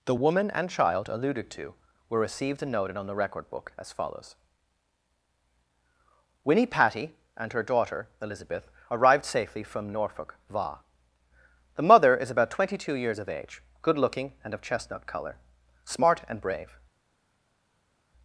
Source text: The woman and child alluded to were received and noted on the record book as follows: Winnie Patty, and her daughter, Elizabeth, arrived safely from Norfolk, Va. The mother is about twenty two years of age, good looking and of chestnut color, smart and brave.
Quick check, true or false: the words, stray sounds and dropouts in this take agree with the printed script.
true